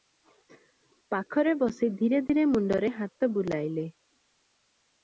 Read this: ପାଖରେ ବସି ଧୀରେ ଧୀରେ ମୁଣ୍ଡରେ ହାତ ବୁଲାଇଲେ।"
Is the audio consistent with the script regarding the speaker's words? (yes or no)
yes